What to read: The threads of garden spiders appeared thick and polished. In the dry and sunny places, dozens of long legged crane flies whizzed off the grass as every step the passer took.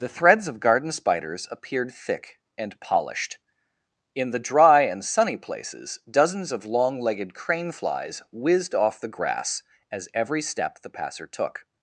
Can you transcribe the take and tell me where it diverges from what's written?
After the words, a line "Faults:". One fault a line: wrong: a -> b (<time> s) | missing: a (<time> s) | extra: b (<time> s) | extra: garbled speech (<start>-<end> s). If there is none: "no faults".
The threads of garden spiders appeared thick and polished. In the dry and sunny places, dozens of long legged crane flies whizzed off the grass as every step the passer took.
Faults:
no faults